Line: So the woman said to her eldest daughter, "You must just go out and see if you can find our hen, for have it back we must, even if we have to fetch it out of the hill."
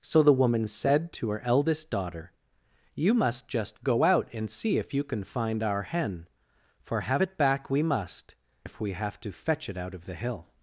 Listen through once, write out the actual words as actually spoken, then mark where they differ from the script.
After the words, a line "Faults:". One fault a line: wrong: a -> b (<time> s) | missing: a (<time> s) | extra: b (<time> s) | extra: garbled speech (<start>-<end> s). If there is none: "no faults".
So the woman said to her eldest daughter, "You must just go out and see if you can find our hen, for have it back we must, if we have to fetch it out of the hill."
Faults:
missing: even (8.4 s)